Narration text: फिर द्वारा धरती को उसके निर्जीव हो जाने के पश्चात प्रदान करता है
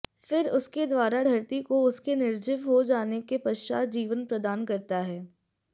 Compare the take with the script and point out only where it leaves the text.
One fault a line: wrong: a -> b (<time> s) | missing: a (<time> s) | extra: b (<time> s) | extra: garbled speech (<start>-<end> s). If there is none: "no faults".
extra: उसके (0.5 s)
extra: जीवन (3.9 s)